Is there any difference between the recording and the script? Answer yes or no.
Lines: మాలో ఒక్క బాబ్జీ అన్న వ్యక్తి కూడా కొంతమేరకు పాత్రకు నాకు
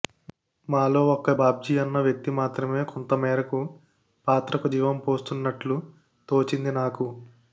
yes